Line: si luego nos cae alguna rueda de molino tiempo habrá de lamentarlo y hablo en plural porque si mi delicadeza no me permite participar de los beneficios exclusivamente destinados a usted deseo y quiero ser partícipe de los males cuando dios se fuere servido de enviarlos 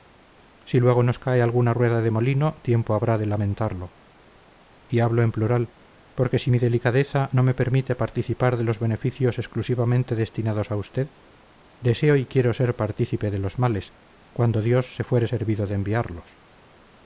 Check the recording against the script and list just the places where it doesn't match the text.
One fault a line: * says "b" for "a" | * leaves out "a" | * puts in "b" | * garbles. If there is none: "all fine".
all fine